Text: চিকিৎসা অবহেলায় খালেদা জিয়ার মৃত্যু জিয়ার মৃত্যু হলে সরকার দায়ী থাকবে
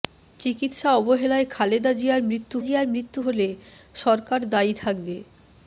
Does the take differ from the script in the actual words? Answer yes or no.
no